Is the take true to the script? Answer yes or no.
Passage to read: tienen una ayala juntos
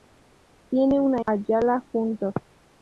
yes